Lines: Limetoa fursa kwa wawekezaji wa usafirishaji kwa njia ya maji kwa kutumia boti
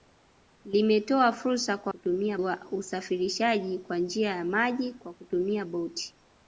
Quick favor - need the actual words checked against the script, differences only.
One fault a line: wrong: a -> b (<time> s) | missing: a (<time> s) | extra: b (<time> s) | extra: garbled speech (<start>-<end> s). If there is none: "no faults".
wrong: wawekezaji -> kutumia (1.9 s)